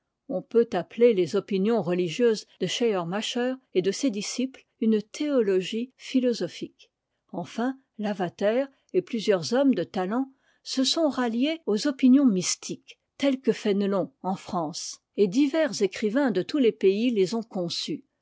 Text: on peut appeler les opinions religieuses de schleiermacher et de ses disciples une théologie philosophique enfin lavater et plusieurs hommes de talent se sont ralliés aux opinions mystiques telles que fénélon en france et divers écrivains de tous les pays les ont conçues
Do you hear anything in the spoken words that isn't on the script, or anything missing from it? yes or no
no